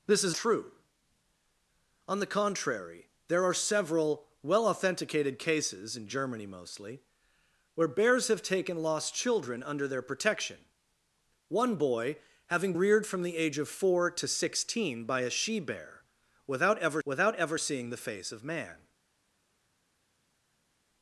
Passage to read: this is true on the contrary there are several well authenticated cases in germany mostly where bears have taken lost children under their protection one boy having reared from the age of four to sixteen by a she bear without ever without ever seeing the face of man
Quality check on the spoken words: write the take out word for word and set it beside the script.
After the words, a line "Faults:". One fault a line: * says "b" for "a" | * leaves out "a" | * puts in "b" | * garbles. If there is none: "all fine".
this is true on the contrary there are several well authenticated cases in germany mostly where bears have taken lost children under their protection one boy having reared from the age of four to sixteen by a she bear without ever without ever seeing the face of man
Faults:
all fine